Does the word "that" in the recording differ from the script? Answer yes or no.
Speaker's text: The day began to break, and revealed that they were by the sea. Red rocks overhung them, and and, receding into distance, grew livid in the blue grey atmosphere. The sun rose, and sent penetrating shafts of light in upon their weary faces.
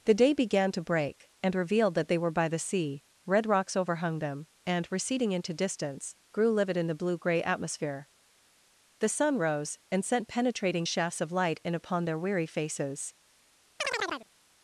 no